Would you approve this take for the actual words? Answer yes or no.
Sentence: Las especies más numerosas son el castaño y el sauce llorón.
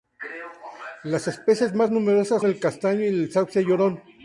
no